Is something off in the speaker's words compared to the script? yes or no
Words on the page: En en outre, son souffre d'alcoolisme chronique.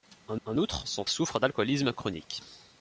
no